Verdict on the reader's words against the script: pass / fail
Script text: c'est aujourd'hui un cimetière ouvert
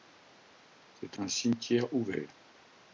fail